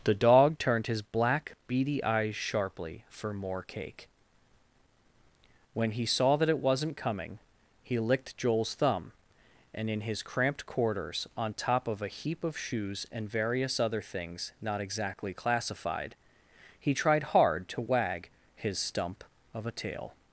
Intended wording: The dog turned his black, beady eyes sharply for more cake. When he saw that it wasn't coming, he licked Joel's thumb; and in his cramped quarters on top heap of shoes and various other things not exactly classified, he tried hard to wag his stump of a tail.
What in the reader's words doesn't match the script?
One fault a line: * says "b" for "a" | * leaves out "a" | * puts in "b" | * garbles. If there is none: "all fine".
* puts in "of a"